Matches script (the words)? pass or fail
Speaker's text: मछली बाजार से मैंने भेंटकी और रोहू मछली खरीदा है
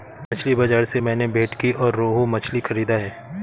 pass